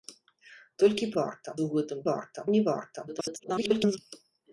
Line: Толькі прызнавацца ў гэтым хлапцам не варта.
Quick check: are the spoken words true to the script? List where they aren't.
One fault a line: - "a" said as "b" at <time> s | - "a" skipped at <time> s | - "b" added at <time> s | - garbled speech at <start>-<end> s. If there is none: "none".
- "прызнавацца" said as "варта" at 1.2 s
- "хлапцам" said as "варта" at 2.1 s
- garbled speech at 3.1-4.0 s